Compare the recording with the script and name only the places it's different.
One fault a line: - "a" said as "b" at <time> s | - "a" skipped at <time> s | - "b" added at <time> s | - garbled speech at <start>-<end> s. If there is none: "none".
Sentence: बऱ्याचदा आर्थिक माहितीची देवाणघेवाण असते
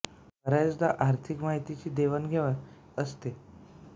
none